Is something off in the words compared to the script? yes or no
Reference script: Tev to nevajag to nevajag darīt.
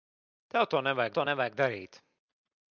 no